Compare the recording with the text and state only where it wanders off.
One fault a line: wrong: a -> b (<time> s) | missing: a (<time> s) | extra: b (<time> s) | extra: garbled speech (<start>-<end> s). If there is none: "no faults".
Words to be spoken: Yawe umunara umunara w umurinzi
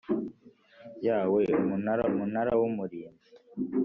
no faults